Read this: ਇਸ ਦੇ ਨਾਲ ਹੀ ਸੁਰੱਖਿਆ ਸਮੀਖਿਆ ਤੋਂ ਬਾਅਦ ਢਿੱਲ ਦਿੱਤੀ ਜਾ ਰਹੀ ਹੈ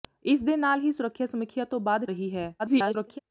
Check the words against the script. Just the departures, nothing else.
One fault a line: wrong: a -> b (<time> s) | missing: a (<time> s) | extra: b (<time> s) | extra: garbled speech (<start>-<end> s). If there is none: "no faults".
missing: ਢਿੱਲ ਦਿੱਤੀ ਜਾ (2.0 s)
extra: garbled speech (2.6-3.2 s)